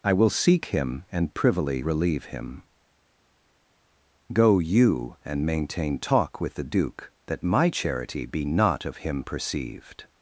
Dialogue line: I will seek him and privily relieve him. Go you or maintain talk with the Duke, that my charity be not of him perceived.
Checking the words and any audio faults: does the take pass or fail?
fail